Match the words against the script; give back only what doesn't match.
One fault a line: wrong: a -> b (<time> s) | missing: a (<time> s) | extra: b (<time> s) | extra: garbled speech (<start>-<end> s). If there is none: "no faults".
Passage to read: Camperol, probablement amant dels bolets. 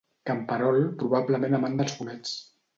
no faults